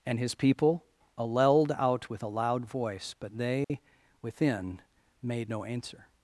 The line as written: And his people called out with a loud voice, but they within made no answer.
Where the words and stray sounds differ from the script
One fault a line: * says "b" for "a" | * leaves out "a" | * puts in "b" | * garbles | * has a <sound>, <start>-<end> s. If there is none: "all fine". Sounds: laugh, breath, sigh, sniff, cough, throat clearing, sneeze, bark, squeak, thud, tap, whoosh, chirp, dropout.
* says "alleled" for "called"
* has a dropout, 3.6-3.7 s